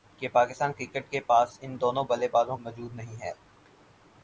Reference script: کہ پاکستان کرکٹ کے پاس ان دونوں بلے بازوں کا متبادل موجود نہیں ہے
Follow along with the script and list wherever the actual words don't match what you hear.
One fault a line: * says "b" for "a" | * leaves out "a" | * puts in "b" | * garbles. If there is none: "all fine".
* leaves out "کا متبادل"